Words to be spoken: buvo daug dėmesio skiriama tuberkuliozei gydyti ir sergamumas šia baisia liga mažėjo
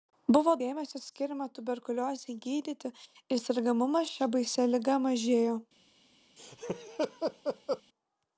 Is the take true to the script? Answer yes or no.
no